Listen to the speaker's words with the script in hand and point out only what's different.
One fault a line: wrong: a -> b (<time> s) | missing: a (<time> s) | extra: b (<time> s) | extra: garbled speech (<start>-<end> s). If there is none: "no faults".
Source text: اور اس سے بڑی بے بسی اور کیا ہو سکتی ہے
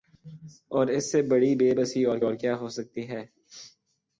extra: اور (2.2 s)